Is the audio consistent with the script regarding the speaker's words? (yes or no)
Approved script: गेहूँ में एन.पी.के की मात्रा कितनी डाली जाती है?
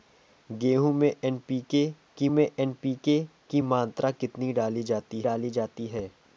no